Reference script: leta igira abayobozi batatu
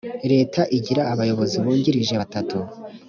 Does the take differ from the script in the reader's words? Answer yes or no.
yes